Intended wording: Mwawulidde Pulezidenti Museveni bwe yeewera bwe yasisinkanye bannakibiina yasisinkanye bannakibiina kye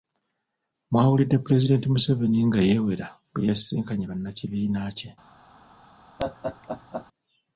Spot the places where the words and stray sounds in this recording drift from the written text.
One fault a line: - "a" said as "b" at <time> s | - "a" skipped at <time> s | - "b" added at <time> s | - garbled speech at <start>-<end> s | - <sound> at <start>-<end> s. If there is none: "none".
- "bwe" said as "nga" at 2.5 s
- "yasisinkanye bannakibiina" skipped at 4.8 s
- laugh at 6.2-7.1 s